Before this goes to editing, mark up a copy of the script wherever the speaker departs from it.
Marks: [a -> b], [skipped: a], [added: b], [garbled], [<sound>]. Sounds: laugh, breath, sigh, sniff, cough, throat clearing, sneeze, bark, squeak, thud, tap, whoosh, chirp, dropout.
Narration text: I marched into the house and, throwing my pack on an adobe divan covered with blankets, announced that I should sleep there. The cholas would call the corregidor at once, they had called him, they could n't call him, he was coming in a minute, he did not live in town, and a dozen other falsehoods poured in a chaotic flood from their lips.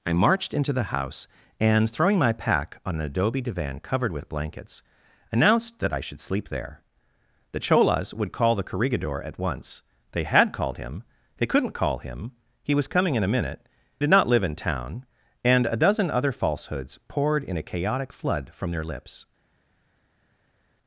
I marched into the house and, throwing my pack on an adobe divan covered with blankets, announced that I should sleep there. The cholas would call the corregidor at once, they had called him, they could n't call him, he was coming in a minute, [skipped: he] did not live in town, and a dozen other falsehoods poured in a chaotic flood from their lips.